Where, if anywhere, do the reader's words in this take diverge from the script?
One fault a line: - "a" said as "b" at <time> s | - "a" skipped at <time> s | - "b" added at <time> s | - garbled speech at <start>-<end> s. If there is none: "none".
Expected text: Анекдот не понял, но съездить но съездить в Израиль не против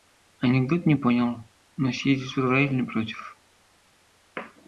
- "но съездить" skipped at 2.3 s